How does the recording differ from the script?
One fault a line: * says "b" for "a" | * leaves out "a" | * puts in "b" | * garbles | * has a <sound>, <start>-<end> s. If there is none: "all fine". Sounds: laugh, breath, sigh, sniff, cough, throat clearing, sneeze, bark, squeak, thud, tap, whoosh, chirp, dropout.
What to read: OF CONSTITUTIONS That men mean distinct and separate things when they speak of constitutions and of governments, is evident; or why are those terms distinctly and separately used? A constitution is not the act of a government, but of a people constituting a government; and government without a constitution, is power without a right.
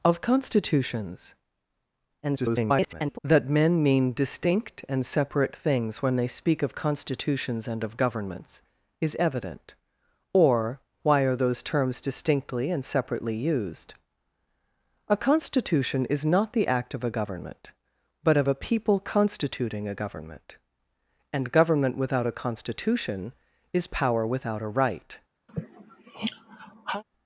* garbles
* has a sigh, 25.5-27.0 s